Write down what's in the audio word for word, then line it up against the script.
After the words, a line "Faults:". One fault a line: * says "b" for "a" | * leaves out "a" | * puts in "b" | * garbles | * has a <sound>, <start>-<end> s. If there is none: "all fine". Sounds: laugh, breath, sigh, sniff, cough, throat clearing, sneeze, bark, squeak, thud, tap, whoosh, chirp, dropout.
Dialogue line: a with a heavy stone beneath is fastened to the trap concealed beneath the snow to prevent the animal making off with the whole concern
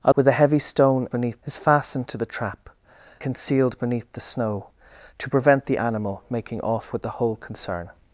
a with a heavy stone beneath is fastened to the trap concealed beneath the snow to prevent the animal making off with the whole concern
Faults:
all fine